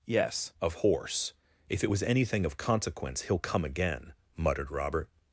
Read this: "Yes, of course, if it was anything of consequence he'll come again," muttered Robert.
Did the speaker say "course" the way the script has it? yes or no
no